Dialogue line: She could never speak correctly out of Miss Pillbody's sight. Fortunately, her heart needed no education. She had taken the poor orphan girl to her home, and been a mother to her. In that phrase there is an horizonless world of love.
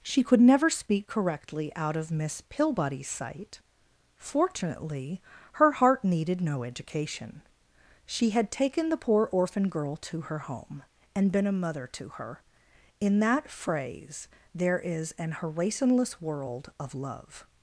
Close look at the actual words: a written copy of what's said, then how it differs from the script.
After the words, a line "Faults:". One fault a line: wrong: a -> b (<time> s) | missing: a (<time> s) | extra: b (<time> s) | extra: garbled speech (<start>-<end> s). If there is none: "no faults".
She could never speak correctly out of Miss Pillbody's sight. Fortunately, her heart needed no education. She had taken the poor orphan girl to her home, and been a mother to her. In that phrase there is an horizonless world of love.
Faults:
no faults